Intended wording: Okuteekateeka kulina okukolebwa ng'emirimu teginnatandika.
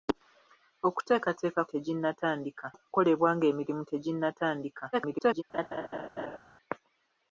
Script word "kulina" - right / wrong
wrong